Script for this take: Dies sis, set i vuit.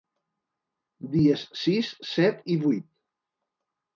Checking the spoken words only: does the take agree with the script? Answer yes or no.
yes